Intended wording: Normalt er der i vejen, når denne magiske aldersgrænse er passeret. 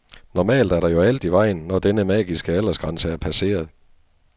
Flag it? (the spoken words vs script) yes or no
yes